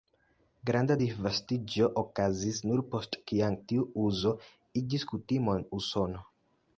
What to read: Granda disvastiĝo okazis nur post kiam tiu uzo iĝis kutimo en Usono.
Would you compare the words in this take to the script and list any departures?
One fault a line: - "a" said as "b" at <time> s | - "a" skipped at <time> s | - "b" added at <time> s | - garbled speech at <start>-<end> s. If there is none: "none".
none